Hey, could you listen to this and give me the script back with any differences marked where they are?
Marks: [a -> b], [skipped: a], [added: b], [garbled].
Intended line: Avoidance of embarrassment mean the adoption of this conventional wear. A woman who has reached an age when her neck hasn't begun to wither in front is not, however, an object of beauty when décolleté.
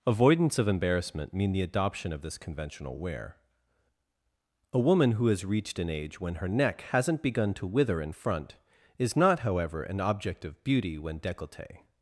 Avoidance of embarrassment mean the adoption of this conventional wear. A woman who has reached an age when her neck hasn't begun to wither in front is not, however, an object of beauty when décolleté.